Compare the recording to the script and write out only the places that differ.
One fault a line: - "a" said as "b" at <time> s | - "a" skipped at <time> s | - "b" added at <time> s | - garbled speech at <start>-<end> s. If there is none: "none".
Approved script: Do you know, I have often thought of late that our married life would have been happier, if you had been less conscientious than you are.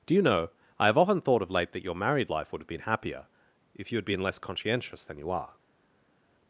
- "our" said as "your" at 1.8 s